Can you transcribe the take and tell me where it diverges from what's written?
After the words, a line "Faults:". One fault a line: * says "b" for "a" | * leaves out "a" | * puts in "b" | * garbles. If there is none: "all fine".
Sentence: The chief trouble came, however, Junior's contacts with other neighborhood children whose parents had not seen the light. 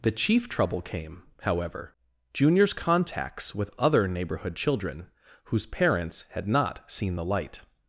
The chief trouble came, however, Junior's contacts with other neighborhood children whose parents had not seen the light.
Faults:
all fine